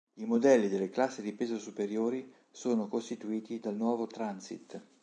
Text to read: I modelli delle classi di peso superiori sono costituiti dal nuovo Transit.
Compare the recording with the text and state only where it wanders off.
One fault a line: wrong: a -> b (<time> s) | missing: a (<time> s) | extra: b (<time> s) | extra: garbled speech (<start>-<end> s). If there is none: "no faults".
no faults